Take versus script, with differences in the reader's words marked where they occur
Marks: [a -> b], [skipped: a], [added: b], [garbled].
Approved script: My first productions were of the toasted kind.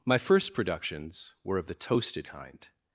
My first productions were of the toasted kind.